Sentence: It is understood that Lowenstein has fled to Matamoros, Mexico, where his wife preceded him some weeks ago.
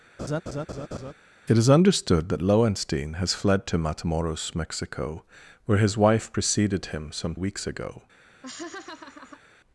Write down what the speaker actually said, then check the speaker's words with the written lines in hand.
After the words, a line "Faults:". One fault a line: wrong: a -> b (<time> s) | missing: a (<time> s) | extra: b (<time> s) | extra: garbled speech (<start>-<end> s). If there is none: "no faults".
It is understood that Lowenstein has fled to Matamoros, Mexico, where his wife preceded him some weeks ago.
Faults:
no faults